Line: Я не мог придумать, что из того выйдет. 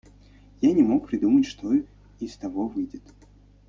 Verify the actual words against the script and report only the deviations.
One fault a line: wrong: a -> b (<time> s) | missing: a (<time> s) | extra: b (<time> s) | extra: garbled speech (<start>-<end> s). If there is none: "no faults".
no faults